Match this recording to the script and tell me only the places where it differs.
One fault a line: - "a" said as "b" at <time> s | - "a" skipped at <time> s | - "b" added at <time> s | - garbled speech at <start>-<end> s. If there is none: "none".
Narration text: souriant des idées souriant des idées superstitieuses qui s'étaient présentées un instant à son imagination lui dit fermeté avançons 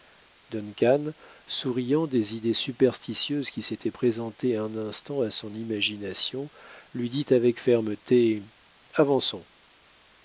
- "souriant des idées" skipped at 2.5 s
- "avec" added at 7.3 s